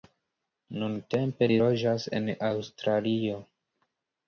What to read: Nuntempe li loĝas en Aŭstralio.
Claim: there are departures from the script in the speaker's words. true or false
false